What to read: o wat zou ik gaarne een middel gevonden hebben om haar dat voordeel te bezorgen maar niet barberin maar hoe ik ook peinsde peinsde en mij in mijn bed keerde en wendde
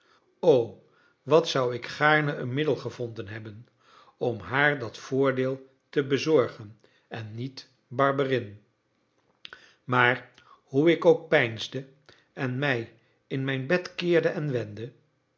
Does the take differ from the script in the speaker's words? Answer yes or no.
yes